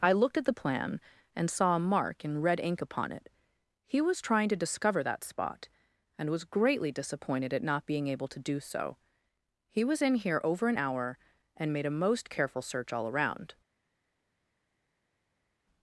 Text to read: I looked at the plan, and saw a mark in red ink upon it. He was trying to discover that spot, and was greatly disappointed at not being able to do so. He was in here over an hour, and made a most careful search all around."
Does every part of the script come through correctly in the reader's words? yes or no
yes